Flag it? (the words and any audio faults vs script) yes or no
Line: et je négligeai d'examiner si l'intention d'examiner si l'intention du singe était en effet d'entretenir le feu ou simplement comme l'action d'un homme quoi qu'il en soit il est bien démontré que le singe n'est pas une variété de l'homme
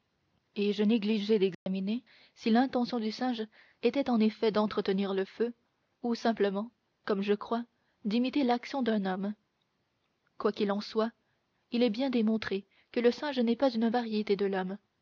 yes